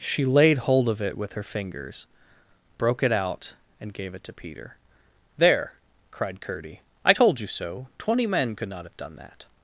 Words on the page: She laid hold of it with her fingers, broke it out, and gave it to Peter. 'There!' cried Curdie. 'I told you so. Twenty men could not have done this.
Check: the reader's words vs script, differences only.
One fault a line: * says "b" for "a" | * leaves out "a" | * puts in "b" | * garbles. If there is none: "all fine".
* says "that" for "this"